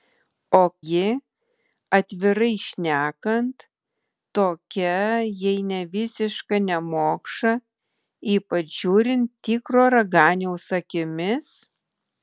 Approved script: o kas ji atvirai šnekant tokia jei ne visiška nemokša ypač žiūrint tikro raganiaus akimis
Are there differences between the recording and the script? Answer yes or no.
yes